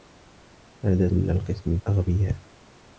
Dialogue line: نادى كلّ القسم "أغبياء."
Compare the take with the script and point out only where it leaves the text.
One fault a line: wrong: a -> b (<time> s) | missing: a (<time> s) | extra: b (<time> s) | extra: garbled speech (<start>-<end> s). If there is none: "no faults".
no faults